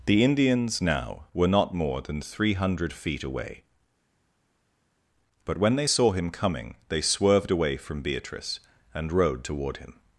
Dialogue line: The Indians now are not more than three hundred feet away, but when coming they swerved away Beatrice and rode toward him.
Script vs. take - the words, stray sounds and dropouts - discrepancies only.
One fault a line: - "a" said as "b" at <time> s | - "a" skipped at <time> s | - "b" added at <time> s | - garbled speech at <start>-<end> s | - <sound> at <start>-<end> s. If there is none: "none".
- "are" said as "were" at 1.3 s
- "they saw him" added at 5.7 s
- "from" added at 7.8 s